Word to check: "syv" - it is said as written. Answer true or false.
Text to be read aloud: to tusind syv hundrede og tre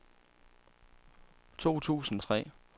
false